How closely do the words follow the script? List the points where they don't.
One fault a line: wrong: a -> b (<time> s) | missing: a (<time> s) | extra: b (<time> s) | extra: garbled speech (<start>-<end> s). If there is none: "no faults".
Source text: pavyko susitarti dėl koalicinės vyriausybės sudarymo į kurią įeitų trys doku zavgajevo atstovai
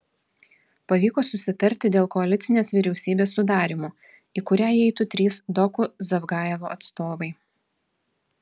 no faults